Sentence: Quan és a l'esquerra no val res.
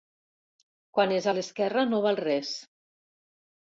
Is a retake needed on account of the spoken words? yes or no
no